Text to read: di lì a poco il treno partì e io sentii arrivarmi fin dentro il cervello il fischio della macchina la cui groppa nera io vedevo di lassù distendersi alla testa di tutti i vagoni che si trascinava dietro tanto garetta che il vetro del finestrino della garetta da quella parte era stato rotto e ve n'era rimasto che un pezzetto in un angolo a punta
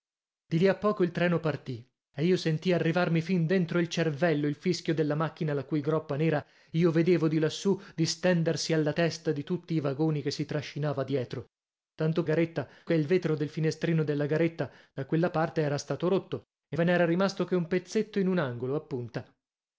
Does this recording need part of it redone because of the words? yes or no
no